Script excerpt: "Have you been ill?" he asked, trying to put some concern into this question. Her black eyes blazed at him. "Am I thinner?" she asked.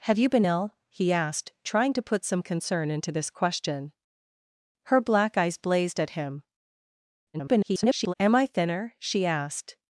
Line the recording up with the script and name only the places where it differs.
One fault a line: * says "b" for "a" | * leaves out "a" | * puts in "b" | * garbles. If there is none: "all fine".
* garbles